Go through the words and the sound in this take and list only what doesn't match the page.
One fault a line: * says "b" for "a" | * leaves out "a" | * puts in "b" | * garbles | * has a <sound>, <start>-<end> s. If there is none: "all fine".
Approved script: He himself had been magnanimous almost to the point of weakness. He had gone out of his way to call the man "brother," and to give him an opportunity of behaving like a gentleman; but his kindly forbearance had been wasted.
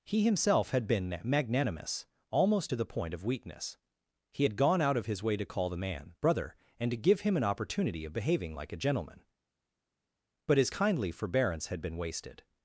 all fine